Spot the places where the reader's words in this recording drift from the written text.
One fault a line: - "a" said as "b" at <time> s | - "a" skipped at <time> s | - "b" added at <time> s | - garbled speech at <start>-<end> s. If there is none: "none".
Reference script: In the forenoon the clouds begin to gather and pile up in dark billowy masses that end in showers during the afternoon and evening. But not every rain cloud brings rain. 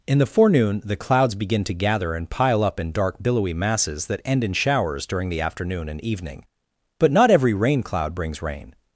none